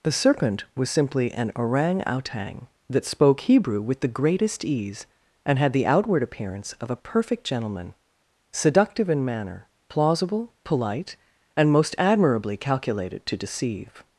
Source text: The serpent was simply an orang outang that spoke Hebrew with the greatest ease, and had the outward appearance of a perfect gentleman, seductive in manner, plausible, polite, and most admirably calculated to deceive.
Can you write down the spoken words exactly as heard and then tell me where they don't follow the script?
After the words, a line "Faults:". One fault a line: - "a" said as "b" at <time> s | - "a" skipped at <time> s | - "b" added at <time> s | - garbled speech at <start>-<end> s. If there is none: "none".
The serpent was simply an orang outang that spoke Hebrew with the greatest ease, and had the outward appearance of a perfect gentleman, seductive in manner, plausible, polite, and most admirably calculated to deceive.
Faults:
none